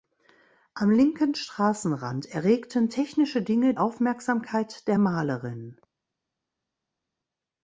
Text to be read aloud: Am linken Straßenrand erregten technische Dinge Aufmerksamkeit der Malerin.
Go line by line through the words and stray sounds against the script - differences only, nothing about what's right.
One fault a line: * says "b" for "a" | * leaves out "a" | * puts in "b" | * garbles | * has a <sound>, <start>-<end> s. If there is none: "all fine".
all fine